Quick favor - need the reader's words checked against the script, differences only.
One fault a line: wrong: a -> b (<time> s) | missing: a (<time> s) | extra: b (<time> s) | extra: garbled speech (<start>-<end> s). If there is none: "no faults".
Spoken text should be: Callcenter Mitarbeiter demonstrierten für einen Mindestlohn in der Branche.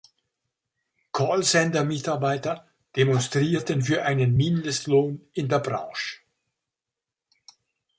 no faults